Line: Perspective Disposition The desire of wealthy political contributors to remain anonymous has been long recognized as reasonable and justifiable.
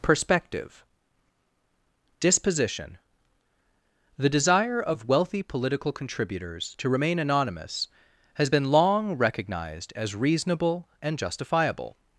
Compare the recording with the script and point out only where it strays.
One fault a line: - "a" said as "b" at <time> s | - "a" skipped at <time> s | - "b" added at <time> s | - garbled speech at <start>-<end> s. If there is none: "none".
none